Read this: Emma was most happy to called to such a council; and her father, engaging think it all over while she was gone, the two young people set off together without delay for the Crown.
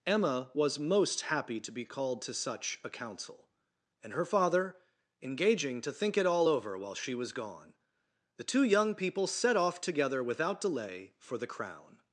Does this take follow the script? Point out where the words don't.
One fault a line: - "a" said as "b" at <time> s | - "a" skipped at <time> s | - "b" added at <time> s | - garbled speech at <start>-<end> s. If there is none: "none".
- "be" added at 1.7 s
- "to" added at 5.8 s